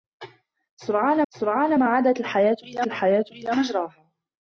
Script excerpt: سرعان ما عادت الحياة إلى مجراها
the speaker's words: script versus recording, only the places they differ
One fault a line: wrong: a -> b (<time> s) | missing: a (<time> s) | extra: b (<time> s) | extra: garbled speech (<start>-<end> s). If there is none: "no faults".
extra: سرعان (1.3 s)
extra: الحياة إلى (2.9 s)